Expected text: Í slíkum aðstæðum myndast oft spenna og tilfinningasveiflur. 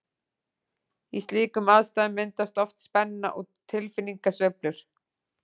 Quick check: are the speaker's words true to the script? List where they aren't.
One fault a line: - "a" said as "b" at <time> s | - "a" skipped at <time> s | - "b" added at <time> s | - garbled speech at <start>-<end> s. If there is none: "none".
none